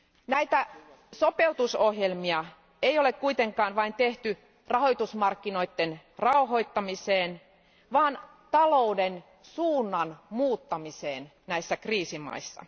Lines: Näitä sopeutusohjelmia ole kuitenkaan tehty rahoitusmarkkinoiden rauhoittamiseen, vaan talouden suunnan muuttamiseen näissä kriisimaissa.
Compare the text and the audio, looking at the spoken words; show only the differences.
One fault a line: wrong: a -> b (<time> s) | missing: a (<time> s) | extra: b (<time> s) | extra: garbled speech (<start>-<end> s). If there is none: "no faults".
extra: ei (2.8 s)
extra: vain (3.8 s)